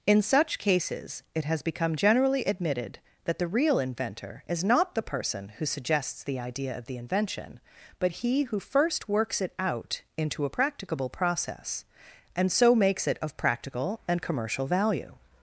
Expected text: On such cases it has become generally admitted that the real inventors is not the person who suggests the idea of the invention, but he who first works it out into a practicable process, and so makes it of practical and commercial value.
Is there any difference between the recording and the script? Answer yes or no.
yes